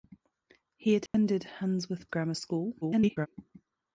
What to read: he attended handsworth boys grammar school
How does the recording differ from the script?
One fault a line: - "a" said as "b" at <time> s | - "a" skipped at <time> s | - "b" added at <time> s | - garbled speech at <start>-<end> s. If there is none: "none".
- "boys" skipped at 2.1 s
- garbled speech at 2.8-3.3 s